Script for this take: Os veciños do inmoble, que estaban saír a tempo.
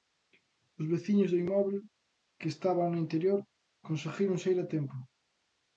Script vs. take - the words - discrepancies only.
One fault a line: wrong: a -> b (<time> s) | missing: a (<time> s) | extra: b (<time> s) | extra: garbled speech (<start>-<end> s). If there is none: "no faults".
extra: no interior conseguiron (2.9 s)